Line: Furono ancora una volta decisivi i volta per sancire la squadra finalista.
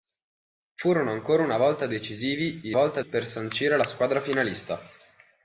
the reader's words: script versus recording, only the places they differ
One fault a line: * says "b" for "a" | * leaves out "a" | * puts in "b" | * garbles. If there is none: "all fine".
all fine